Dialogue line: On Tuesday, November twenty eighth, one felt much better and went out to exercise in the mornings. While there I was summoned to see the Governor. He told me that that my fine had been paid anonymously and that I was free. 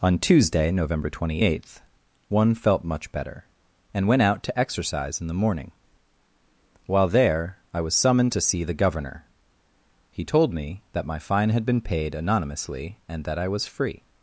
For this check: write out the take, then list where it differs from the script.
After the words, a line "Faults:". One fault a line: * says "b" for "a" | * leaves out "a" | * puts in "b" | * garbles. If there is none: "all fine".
On Tuesday, November twenty eighth, one felt much better and went out to exercise in the morning. While there I was summoned to see the Governor. He told me that my fine had been paid anonymously and that I was free.
Faults:
* says "morning" for "mornings"
* leaves out "that"